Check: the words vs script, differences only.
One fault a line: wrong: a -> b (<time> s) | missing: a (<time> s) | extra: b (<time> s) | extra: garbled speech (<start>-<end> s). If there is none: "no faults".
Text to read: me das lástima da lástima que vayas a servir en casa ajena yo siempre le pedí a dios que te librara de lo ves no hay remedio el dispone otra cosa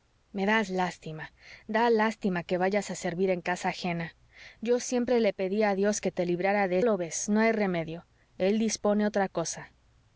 no faults